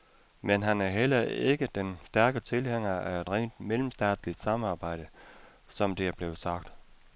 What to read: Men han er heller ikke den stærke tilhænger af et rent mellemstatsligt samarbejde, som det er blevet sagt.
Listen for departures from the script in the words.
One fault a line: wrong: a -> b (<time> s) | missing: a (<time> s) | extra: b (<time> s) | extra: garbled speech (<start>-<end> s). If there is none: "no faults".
no faults